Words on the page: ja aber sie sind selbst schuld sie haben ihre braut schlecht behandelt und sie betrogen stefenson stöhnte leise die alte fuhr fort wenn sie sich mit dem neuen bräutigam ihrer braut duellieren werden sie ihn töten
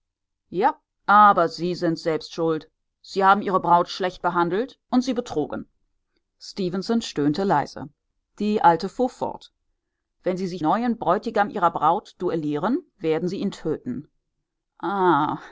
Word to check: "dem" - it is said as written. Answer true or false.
false